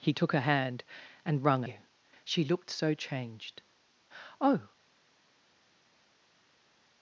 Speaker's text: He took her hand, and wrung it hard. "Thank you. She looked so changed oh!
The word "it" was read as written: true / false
false